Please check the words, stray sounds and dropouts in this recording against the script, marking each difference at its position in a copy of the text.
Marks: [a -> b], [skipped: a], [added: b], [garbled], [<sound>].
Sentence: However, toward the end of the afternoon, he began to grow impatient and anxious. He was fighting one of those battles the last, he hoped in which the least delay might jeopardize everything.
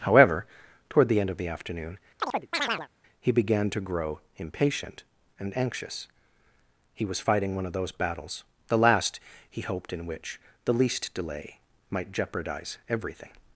However, toward the end of the afternoon, [chirp] he began to grow impatient and anxious. He was fighting one of those battles the last, he hoped in which the least delay might jeopardize everything.